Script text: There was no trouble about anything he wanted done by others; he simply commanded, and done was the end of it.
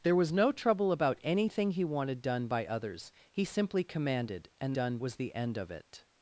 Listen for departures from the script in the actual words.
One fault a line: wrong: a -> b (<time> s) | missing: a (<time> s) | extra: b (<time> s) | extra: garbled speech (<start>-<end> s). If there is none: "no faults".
no faults